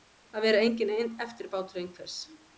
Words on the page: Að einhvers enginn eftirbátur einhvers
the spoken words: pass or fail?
fail